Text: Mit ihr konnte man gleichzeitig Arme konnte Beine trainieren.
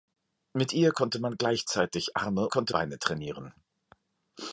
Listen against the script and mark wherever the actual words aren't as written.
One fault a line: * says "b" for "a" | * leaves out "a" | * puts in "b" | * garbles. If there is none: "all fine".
all fine